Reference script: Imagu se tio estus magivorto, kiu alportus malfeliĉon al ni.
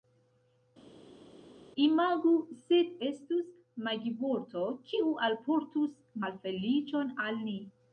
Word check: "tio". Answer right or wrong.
wrong